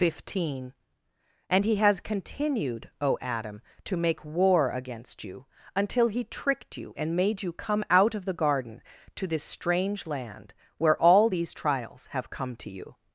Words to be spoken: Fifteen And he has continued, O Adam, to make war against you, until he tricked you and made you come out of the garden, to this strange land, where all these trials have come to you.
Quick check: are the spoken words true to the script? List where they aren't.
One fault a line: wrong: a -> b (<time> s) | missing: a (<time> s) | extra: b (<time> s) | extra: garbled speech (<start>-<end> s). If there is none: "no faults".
no faults